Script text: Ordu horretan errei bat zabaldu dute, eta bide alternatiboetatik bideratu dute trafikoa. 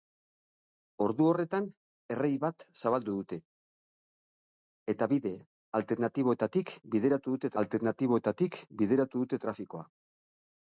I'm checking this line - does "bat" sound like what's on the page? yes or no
yes